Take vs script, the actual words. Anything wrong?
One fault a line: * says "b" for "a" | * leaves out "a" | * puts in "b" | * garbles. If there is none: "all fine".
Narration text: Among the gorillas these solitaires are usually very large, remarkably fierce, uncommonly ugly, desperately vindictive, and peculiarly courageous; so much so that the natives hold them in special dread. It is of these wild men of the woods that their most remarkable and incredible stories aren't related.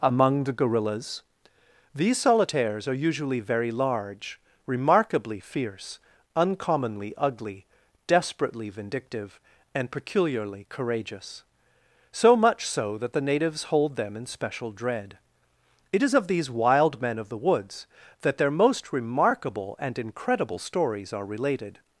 * says "are" for "aren't"